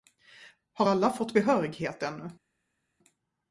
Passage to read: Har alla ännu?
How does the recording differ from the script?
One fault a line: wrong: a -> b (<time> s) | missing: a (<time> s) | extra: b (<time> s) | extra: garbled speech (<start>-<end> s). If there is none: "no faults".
extra: fått behörighet (1.1 s)